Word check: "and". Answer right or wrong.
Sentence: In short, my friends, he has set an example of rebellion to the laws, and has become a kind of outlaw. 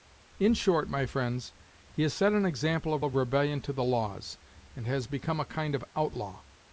right